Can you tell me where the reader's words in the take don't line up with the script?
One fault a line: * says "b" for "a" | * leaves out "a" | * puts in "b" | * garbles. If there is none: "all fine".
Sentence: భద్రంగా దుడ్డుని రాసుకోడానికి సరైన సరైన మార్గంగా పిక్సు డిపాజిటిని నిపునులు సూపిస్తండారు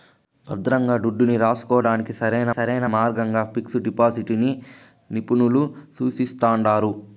all fine